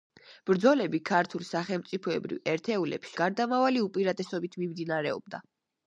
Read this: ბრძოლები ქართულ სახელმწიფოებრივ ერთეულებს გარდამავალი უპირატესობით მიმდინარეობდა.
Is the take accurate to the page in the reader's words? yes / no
yes